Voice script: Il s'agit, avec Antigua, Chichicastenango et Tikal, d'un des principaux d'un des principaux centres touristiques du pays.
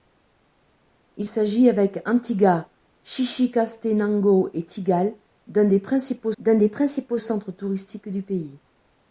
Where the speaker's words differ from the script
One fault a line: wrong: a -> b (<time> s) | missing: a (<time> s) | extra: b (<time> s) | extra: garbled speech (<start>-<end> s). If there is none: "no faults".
no faults